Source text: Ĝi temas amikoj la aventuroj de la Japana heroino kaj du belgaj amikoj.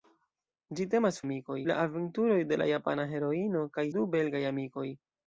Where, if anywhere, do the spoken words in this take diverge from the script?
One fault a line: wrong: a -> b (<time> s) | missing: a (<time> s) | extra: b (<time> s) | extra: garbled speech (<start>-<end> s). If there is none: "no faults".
no faults